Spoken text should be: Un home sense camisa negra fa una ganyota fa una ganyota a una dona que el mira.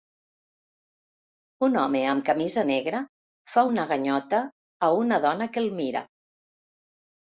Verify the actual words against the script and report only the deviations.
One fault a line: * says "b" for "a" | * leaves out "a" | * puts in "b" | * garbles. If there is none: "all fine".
* says "amb" for "sense"
* leaves out "fa una ganyota"